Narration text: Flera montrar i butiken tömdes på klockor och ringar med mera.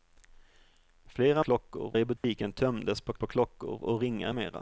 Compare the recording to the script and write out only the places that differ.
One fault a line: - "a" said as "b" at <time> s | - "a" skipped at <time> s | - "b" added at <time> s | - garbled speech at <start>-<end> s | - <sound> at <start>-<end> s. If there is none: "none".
- "montrar" said as "klockor" at 1.4 s
- dropout at 2.2-2.2 s
- "på" added at 3.1 s
- "med" skipped at 4.3 s